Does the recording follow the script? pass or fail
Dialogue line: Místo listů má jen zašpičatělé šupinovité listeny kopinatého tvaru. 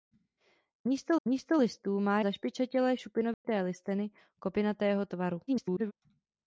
fail